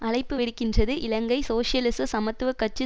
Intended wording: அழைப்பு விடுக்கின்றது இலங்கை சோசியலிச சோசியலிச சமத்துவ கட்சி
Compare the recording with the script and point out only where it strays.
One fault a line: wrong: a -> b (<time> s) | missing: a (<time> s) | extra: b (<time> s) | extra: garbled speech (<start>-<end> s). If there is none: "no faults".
missing: சோசியலிச (2.1 s)